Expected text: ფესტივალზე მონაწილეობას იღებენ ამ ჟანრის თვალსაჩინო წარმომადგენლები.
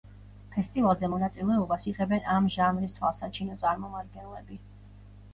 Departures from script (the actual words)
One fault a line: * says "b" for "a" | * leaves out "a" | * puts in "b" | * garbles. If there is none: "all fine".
all fine